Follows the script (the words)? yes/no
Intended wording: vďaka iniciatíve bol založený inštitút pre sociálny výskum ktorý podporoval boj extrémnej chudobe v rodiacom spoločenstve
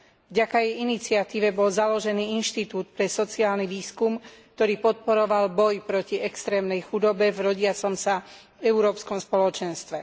no